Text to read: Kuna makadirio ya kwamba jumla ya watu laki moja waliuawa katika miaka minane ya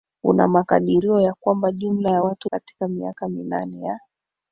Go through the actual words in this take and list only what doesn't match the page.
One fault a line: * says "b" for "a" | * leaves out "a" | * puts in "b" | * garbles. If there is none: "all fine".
* leaves out "laki moja waliuawa"